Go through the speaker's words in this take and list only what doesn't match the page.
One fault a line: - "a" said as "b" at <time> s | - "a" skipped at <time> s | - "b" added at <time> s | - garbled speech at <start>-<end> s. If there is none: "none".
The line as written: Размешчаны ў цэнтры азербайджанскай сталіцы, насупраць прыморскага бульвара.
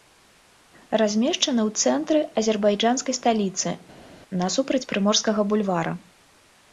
none